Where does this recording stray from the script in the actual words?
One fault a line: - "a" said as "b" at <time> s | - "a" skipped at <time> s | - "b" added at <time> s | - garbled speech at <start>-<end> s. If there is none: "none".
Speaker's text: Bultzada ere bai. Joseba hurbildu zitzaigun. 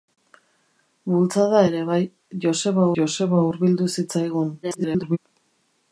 - "joseba" added at 3.0 s
- garbled speech at 4.6-5.2 s